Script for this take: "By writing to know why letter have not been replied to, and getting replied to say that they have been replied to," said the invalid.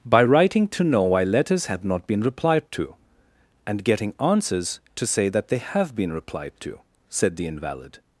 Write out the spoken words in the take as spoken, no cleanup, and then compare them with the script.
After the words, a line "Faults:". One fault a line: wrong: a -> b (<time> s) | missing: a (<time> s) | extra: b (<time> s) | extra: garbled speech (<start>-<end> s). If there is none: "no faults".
"By writing to know why letters have not been replied to, and getting answers to say that they have been replied to," said the invalid.
Faults:
wrong: letter -> letters (1.2 s)
wrong: replied -> answers (4.2 s)